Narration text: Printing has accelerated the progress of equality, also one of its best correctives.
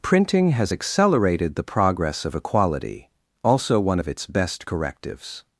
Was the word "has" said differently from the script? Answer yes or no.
no